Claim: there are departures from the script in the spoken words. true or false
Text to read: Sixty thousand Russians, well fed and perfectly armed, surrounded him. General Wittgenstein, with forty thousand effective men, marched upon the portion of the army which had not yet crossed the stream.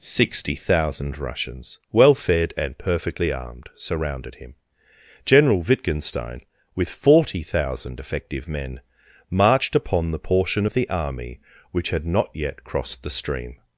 false